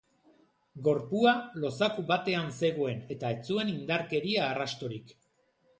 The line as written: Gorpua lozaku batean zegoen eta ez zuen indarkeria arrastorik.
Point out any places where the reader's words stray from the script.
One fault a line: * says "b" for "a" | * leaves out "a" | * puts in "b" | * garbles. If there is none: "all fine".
all fine